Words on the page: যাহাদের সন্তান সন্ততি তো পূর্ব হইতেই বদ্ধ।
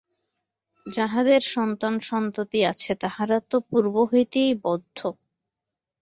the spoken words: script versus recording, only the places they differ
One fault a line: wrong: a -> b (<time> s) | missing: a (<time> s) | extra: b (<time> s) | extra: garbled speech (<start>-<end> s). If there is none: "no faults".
extra: আছে তাহারা (2.6 s)